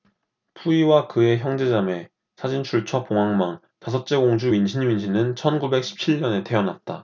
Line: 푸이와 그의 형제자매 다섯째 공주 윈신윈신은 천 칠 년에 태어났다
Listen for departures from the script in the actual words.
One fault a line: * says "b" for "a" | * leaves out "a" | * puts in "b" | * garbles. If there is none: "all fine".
* puts in "사진출처 봉황망"
* puts in "구백 십"